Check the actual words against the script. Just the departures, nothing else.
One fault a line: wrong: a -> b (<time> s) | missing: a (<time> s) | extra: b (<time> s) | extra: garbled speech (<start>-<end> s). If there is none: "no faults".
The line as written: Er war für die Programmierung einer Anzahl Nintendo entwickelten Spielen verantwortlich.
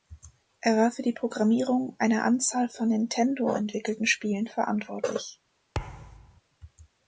extra: von (2.7 s)